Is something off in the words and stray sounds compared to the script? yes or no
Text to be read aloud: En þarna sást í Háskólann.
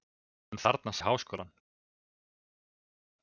yes